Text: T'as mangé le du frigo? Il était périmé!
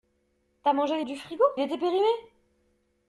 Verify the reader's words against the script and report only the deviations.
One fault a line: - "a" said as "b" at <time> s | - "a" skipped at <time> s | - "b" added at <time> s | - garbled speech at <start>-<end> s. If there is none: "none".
none